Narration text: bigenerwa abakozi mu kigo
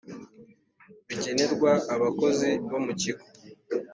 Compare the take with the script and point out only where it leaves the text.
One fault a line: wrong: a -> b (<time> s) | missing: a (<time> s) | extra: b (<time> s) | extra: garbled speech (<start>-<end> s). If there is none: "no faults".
extra: bo (2.7 s)